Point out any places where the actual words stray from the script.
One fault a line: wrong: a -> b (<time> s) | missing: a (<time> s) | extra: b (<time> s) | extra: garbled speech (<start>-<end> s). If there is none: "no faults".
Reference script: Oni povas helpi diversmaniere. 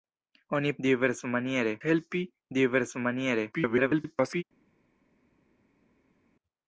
wrong: povas -> diversmaniere (0.9 s)
extra: garbled speech (3.5-4.4 s)